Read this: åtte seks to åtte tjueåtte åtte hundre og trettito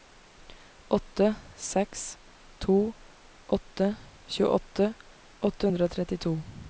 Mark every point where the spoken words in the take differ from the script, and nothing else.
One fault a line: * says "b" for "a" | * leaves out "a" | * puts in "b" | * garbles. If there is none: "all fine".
all fine